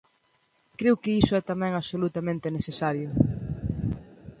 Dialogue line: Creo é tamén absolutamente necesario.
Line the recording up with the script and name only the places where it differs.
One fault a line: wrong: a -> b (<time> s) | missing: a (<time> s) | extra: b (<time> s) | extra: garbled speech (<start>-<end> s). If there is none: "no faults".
extra: que iso (1.0 s)